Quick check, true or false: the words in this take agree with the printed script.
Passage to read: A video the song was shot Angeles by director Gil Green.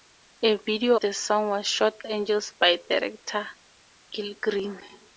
true